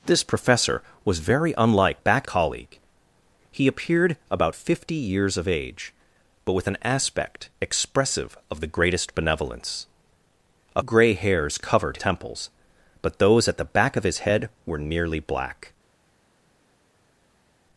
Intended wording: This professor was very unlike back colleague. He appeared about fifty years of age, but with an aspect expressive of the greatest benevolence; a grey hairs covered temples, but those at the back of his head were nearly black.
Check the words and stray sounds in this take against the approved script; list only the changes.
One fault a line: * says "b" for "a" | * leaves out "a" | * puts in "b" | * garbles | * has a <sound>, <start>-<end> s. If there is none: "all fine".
all fine